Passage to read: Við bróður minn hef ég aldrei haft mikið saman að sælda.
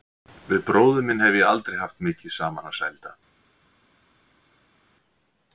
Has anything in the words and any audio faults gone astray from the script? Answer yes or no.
no